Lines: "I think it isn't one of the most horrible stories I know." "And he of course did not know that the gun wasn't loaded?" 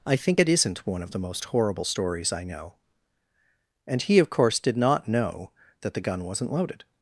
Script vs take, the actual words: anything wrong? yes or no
no